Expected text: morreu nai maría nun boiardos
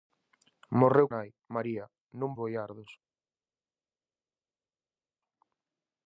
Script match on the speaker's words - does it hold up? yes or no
yes